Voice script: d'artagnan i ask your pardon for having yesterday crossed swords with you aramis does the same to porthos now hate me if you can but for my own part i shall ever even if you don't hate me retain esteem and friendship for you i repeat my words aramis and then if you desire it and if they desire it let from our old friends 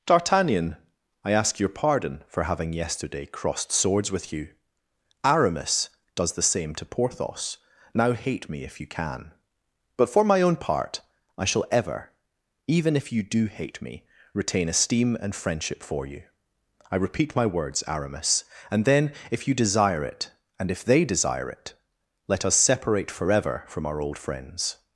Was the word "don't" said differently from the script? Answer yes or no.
yes